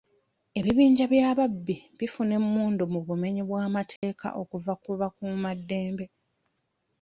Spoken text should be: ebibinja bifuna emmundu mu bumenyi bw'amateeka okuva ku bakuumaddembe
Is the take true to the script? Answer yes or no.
no